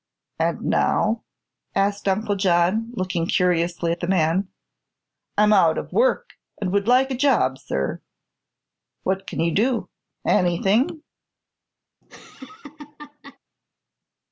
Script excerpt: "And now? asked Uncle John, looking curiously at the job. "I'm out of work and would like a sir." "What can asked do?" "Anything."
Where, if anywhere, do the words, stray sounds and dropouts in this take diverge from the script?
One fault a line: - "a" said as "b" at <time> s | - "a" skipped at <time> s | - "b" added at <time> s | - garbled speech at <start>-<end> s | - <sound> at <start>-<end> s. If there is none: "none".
- "job" said as "man" at 4.1 s
- "job" added at 7.1 s
- "asked" said as "you" at 9.4 s
- laugh at 12.0-13.4 s